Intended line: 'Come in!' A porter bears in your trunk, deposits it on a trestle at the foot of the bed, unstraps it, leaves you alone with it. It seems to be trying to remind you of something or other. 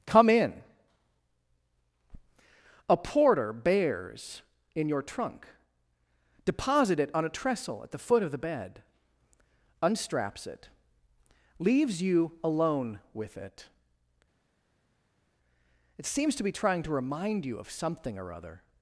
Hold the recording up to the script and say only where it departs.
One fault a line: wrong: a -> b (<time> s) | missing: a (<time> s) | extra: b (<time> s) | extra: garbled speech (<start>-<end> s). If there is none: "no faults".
wrong: deposits -> deposit (6.5 s)